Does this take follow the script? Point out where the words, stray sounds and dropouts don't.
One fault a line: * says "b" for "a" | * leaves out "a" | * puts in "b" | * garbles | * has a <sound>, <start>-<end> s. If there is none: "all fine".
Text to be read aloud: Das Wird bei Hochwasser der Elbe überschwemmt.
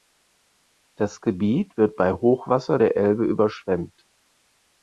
* puts in "Gebiet"